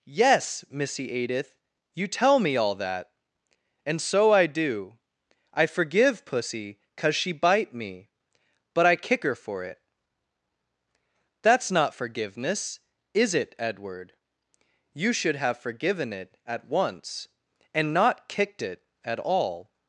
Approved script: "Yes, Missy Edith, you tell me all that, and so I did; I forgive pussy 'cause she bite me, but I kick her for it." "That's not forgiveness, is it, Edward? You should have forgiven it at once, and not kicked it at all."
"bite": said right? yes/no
yes